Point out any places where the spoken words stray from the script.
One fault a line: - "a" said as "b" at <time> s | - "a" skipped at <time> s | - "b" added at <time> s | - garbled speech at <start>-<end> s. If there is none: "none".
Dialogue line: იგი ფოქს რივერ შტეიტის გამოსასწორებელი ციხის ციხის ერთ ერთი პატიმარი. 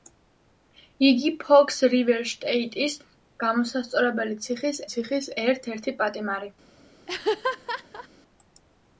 none